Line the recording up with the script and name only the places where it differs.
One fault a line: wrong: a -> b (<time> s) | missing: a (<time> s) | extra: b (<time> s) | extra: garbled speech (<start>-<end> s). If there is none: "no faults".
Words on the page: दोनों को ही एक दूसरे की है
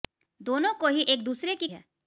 no faults